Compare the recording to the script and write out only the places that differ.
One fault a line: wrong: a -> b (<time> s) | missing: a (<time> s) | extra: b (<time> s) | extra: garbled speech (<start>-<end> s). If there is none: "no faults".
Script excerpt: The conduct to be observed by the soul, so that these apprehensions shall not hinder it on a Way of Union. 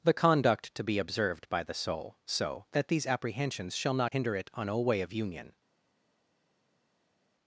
no faults